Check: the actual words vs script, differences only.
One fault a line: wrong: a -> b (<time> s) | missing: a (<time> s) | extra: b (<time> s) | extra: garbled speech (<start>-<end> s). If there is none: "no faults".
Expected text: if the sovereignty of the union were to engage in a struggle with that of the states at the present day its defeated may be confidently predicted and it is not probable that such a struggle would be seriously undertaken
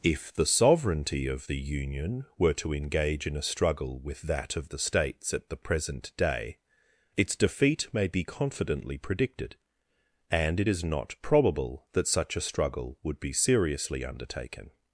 wrong: defeated -> defeat (7.3 s)